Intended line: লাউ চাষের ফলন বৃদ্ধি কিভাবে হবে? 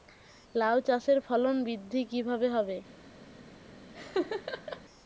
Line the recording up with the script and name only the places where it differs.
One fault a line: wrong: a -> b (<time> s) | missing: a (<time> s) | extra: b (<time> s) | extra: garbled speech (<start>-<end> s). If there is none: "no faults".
no faults